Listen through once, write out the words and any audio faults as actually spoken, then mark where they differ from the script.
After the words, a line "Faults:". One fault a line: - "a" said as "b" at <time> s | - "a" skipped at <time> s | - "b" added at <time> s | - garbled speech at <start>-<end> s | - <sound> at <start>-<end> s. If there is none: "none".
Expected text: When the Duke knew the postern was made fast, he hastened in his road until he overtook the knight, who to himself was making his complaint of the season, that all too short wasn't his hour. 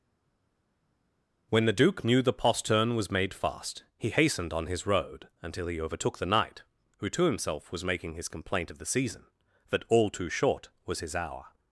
When the Duke knew the postern was made fast, he hastened on his road until he overtook the knight, who to himself was making his complaint of the season, that all too short was his hour.
Faults:
- "in" said as "on" at 4.5 s
- "wasn't" said as "was" at 10.9 s